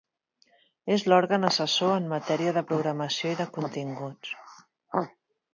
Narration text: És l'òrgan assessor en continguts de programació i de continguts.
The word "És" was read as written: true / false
true